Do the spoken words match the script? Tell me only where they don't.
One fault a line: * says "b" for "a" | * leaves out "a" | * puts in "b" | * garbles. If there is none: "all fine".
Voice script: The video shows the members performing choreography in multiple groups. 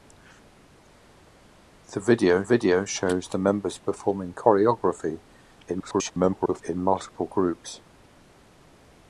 * puts in "video"
* garbles